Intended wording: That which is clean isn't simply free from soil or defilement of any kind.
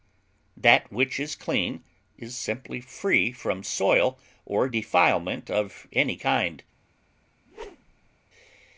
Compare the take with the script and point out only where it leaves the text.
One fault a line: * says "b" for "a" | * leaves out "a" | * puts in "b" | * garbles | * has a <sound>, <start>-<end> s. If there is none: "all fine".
* says "is" for "isn't"
* has a whoosh, 7.4-8.1 s